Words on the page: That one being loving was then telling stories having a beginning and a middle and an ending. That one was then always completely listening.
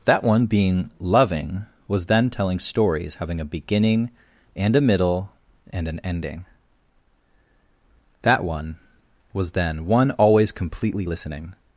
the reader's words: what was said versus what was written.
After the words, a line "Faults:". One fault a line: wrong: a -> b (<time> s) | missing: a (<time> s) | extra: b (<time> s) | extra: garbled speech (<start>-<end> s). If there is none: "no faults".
That one being loving was then telling stories having a beginning and a middle and an ending. That one was then one always completely listening.
Faults:
extra: one (9.9 s)